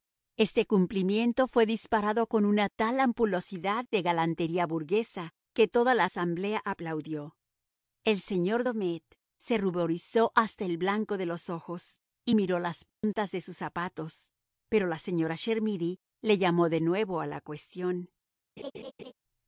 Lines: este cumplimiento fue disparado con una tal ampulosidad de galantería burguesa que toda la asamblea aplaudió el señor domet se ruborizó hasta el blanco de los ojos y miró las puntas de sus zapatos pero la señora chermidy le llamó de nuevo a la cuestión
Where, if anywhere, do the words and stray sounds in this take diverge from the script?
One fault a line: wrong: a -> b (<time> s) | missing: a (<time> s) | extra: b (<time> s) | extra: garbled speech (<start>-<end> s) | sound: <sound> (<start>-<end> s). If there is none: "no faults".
sound: dropout (12.9-13.0 s)
sound: laugh (18.6-19.1 s)